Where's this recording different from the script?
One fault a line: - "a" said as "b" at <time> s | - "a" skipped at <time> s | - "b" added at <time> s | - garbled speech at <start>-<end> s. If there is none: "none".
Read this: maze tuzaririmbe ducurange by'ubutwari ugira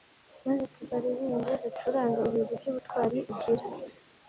- "ibigwi" added at 2.3 s